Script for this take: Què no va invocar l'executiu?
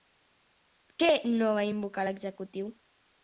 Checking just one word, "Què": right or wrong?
right